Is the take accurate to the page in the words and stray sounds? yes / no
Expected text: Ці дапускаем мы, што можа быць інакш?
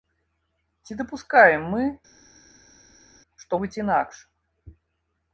no